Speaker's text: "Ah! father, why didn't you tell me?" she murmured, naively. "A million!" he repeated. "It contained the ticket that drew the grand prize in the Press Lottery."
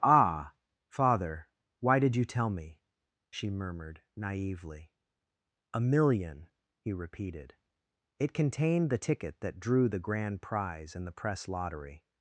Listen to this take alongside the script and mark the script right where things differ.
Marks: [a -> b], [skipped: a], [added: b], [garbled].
"Ah! father, why [didn't -> did] you tell me?" she murmured, naively. "A million!" he repeated. "It contained the ticket that drew the grand prize in the Press Lottery."